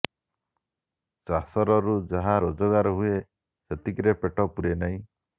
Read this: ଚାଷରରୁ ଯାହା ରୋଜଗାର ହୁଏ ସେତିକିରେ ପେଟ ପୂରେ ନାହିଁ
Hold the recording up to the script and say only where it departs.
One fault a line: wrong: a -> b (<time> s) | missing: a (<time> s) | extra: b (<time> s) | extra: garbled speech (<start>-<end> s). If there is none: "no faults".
no faults